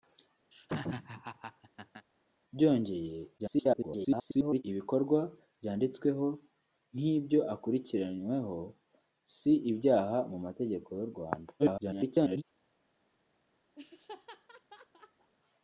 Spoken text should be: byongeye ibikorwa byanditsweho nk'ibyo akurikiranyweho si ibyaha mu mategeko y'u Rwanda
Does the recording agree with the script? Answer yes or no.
no